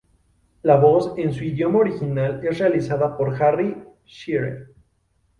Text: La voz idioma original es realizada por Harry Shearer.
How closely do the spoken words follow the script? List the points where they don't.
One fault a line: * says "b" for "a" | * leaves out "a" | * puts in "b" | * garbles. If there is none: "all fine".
* puts in "en su"